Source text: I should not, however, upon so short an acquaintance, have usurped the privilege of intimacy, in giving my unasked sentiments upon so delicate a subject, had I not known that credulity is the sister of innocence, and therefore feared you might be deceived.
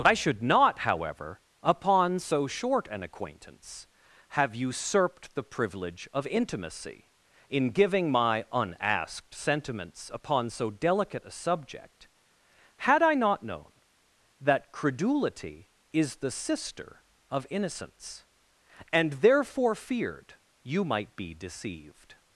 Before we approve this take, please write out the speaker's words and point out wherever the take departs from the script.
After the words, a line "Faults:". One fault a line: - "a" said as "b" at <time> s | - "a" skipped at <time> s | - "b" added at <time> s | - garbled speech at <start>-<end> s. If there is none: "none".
I should not, however, upon so short an acquaintance, have usurped the privilege of intimacy, in giving my unasked sentiments upon so delicate a subject, had I not known that credulity is the sister of innocence, and therefore feared you might be deceived.
Faults:
none